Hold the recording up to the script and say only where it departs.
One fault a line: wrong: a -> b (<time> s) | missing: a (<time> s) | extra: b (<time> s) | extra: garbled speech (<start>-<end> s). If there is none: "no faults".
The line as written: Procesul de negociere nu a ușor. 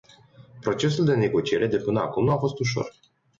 extra: de până acum (1.7 s)
extra: fost (2.3 s)